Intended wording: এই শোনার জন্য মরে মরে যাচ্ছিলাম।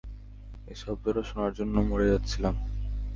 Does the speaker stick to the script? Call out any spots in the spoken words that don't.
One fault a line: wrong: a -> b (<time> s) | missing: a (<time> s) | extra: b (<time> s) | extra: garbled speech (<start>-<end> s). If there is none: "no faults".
extra: শব্দটা (0.8 s)
missing: মরে (2.0 s)